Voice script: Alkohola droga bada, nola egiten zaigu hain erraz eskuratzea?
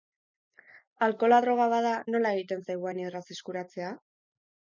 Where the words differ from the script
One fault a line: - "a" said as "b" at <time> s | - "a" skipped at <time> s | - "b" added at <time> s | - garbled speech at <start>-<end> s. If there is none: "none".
none